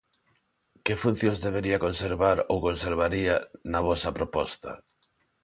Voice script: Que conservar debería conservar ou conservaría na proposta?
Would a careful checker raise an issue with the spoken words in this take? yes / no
yes